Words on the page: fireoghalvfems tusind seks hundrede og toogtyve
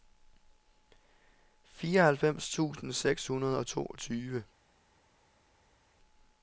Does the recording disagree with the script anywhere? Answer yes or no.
no